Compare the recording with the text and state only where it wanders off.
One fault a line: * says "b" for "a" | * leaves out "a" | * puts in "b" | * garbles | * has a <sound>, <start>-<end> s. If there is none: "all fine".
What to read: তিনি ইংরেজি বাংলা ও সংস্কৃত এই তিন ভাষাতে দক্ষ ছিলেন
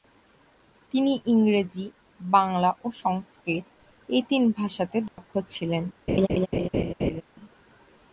* has a dropout, 5.1-5.2 s
* has a laugh, 6.1-7.2 s